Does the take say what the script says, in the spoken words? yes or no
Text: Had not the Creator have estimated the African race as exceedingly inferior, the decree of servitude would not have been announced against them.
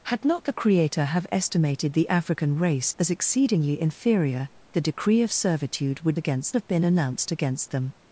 no